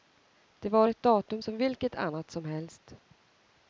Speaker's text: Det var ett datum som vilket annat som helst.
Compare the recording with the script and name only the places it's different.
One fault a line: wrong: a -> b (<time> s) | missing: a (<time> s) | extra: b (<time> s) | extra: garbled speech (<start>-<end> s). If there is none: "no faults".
no faults